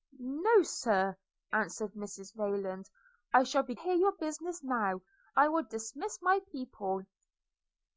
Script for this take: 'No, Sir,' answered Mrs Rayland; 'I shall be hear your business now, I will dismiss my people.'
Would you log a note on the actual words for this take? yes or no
no